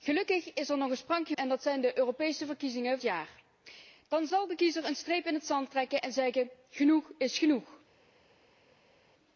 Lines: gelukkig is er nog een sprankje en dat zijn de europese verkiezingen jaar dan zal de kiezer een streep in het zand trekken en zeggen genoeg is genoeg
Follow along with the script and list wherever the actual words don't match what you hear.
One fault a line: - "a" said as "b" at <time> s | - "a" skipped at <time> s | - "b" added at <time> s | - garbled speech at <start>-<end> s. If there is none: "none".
none